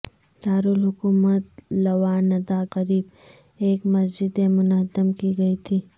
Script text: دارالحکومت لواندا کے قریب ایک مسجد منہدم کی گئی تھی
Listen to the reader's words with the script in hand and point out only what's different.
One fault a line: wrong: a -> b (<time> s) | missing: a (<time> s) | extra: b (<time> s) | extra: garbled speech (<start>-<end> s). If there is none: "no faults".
missing: کے (2.6 s)